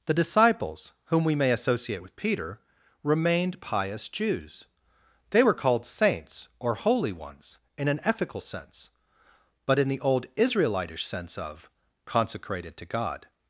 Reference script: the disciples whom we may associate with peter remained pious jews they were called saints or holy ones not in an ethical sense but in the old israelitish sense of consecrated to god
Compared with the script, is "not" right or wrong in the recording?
wrong